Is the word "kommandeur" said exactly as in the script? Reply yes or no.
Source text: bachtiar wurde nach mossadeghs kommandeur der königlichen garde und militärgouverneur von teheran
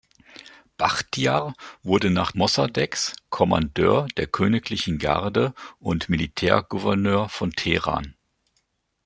yes